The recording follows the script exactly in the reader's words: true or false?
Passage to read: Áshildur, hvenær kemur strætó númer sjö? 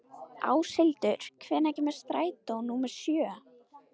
true